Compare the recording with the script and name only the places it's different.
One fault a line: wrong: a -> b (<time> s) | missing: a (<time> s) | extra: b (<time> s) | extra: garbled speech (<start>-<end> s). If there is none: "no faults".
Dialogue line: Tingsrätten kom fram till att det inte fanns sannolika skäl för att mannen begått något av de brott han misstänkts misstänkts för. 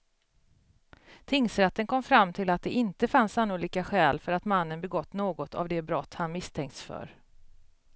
missing: misstänkts (6.8 s)